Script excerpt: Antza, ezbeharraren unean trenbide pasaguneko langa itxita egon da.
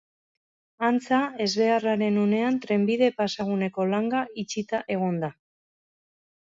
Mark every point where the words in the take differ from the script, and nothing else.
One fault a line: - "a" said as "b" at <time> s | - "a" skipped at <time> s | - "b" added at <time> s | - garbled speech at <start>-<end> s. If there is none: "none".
none